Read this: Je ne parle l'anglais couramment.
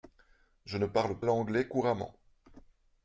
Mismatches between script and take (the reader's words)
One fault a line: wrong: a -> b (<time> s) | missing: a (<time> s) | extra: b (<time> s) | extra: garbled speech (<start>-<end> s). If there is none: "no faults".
no faults